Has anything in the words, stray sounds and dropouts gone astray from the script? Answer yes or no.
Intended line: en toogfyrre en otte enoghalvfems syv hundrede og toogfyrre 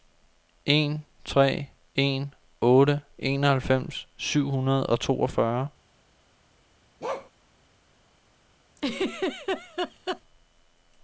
yes